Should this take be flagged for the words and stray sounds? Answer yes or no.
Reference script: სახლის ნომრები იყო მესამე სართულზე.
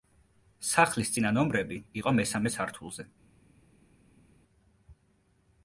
yes